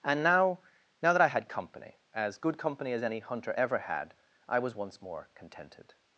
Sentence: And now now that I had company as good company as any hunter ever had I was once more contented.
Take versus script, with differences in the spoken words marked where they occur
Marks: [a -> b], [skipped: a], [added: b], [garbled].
And now now that I had company as good company as any hunter ever had I was once more contented.